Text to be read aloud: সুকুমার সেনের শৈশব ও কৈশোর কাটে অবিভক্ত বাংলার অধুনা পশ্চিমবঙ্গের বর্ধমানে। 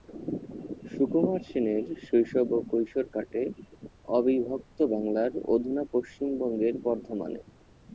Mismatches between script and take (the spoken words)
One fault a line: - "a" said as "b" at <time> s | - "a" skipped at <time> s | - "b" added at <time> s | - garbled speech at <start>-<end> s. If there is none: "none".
none